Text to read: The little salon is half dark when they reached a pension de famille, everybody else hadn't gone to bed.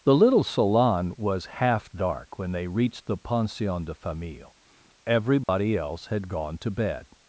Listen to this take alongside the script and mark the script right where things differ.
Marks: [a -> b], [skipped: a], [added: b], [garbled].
The little salon [is -> was] half dark when they reached [a -> the] pension de famille, everybody else [hadn't -> had] gone to bed.